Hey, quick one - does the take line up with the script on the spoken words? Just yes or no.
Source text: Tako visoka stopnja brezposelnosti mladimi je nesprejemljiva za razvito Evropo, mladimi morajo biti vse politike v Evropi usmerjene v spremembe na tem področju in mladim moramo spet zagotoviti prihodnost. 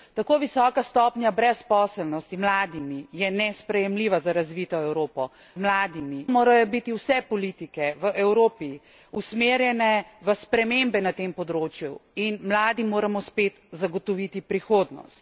yes